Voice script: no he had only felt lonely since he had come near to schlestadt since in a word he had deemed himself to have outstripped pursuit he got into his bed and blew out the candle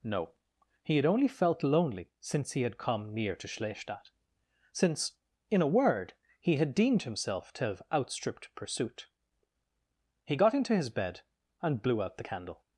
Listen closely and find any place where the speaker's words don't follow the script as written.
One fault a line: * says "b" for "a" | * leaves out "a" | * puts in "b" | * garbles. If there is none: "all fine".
all fine